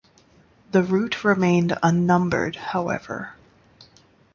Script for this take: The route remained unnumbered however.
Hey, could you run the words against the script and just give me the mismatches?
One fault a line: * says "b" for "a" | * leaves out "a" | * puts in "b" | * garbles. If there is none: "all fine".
all fine